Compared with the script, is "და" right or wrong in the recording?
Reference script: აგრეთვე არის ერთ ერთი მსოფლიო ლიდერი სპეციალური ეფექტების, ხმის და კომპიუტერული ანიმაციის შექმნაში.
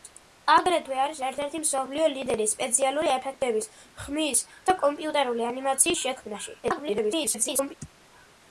right